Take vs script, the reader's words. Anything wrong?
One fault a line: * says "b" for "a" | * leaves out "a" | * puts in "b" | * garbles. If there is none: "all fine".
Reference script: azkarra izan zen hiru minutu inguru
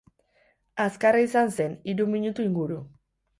all fine